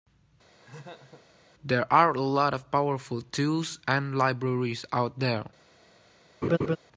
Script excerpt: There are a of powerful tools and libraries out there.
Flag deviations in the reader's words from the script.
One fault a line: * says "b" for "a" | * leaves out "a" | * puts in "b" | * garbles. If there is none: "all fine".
* puts in "lot"